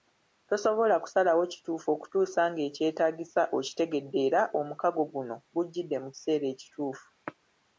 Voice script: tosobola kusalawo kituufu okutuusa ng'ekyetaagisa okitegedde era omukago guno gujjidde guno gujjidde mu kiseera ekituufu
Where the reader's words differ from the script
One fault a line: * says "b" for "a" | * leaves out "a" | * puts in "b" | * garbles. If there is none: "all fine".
* leaves out "guno gujjidde"